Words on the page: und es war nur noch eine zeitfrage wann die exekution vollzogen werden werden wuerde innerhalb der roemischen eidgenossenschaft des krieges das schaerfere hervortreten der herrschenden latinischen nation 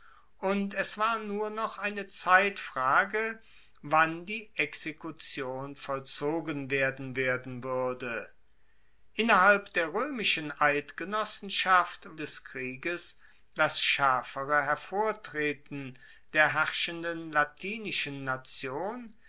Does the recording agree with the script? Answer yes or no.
yes